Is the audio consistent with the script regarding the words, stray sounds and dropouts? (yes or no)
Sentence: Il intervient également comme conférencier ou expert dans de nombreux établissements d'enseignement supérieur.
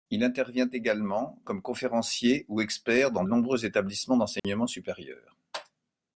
no